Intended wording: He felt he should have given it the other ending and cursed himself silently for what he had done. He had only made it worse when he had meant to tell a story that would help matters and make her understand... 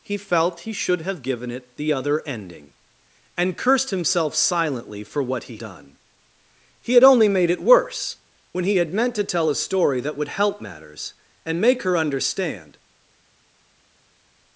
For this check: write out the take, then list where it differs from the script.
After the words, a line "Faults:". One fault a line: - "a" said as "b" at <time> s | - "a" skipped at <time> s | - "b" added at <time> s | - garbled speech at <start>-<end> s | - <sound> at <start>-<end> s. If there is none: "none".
He felt he should have given it the other ending and cursed himself silently for what he done. He had only made it worse when he had meant to tell a story that would help matters and make her understand...
Faults:
- "had" skipped at 5.6 s